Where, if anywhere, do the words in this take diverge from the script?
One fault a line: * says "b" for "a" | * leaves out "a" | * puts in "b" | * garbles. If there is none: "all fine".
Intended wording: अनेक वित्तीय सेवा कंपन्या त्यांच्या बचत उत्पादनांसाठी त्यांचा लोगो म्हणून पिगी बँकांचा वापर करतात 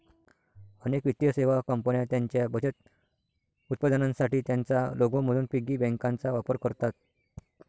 all fine